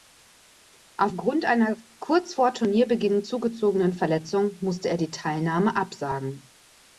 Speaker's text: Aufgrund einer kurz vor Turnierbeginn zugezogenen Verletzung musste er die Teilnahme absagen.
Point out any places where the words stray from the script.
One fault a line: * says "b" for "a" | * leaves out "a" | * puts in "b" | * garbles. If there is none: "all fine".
all fine